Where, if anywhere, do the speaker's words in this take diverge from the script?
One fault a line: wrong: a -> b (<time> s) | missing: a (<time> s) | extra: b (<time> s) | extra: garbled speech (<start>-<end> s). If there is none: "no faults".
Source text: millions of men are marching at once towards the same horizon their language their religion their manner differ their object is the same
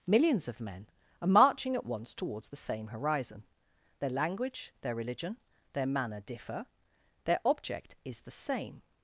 no faults